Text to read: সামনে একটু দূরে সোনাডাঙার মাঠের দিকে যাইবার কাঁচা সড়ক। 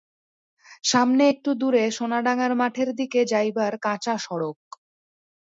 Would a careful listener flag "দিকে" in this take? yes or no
no